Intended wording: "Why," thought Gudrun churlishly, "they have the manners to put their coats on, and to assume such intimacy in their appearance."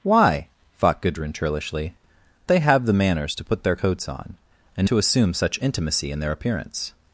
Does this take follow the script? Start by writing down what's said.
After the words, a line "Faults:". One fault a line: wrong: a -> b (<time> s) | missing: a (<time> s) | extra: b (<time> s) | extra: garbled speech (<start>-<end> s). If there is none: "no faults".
"Why," thought Gudrun churlishly, "they have the manners to put their coats on, and to assume such intimacy in their appearance."
Faults:
no faults